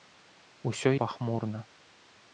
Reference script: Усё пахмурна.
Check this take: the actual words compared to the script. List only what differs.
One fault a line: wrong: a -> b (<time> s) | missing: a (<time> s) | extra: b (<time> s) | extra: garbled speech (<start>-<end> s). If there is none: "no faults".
no faults